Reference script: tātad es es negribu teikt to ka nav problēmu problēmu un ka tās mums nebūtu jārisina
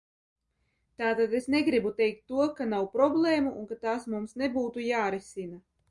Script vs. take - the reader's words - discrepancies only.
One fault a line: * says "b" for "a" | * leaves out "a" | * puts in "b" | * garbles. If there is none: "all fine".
* leaves out "es"
* leaves out "problēmu"